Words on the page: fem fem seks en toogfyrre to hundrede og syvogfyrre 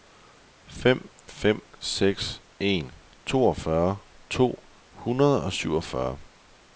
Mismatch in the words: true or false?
false